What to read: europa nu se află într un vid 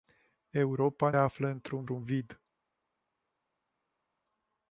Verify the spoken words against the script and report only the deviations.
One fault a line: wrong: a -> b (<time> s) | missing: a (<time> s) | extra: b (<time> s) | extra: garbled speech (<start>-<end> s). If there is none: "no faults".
missing: nu se (1.1 s)
extra: un (1.9 s)